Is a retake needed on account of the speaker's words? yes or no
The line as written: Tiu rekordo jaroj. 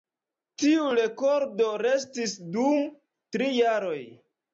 yes